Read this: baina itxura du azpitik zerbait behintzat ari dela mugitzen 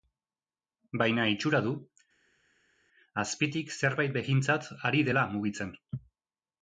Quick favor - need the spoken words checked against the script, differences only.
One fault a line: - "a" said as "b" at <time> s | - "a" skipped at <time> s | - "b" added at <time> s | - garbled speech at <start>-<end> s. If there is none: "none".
none